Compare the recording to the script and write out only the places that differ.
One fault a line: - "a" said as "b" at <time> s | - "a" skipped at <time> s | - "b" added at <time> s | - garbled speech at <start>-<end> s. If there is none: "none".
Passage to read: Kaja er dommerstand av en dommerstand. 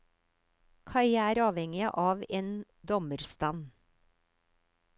- "dommerstand" said as "avhengig" at 1.5 s